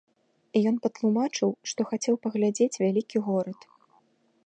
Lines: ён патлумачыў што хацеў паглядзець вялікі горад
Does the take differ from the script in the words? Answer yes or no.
no